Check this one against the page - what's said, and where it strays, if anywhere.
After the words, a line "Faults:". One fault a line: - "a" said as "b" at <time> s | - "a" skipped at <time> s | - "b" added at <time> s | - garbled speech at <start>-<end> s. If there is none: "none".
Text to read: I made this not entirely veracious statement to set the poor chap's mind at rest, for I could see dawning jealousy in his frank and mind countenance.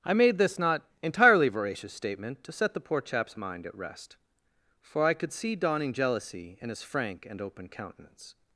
I made this not entirely veracious statement to set the poor chap's mind at rest, for I could see dawning jealousy in his frank and open countenance.
Faults:
- "mind" said as "open" at 7.4 s